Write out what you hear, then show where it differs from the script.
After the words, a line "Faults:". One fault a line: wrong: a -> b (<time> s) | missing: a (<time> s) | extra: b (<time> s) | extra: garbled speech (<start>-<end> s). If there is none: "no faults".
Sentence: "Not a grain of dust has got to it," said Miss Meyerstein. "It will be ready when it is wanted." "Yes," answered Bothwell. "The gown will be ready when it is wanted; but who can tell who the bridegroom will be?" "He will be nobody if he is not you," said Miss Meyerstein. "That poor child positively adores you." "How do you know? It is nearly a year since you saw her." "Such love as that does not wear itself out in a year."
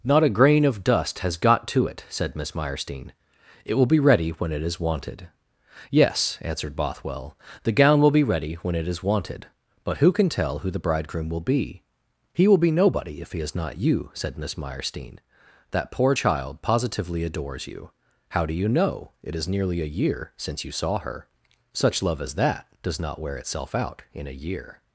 "Not a grain of dust has got to it," said Miss Meyerstein. "It will be ready when it is wanted." "Yes," answered Bothwell. "The gown will be ready when it is wanted; but who can tell who the bridegroom will be?" "He will be nobody if he is not you," said Miss Meyerstein. "That poor child positively adores you." "How do you know? It is nearly a year since you saw her." "Such love as that does not wear itself out in a year."
Faults:
no faults